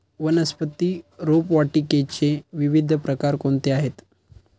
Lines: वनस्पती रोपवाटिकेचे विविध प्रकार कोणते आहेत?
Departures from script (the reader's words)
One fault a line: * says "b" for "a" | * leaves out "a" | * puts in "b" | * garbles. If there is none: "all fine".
all fine